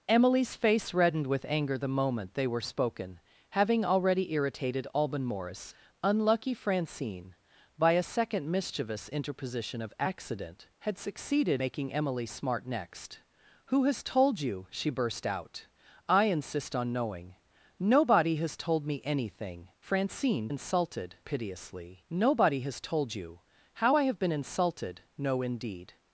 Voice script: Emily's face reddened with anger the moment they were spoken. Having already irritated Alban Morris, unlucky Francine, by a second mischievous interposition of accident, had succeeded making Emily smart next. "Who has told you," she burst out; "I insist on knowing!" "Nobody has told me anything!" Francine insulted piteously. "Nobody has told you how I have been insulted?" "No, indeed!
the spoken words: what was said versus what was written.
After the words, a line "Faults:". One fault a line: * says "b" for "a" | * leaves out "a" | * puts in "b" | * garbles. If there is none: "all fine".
Emily's face reddened with anger the moment they were spoken. Having already irritated Alban Morris, unlucky Francine, by a second mischievous interposition of accident, had succeeded making Emily smart next. "Who has told you," she burst out; "I insist on knowing!" "Nobody has told me anything!" Francine insulted piteously. "Nobody has told you how I have been insulted?" "No, indeed!
Faults:
all fine